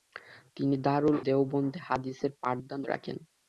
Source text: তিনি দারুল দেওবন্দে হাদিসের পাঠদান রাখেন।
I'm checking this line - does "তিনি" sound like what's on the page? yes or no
yes